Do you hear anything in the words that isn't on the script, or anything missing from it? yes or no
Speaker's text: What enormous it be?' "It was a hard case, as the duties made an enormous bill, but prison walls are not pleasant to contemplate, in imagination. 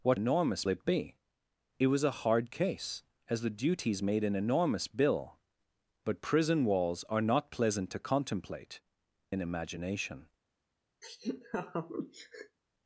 no